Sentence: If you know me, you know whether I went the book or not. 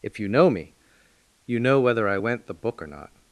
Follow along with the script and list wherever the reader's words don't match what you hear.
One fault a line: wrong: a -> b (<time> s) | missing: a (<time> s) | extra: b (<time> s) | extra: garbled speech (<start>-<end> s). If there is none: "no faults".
no faults